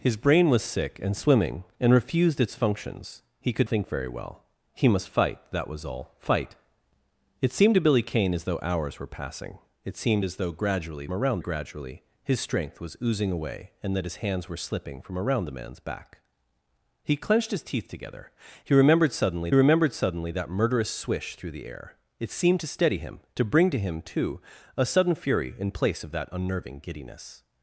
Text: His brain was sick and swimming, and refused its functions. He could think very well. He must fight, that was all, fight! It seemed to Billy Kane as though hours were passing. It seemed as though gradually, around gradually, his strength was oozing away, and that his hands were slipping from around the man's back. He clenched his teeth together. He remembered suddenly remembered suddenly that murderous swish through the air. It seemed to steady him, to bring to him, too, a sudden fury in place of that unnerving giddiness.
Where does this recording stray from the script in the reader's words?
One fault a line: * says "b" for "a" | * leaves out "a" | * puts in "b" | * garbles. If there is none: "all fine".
all fine